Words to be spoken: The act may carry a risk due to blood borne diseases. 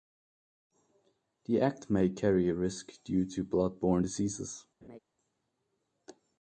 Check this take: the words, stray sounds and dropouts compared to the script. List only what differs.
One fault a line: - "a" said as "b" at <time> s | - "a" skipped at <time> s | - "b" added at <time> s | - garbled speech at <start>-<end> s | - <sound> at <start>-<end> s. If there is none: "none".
- laugh at 4.8-5.0 s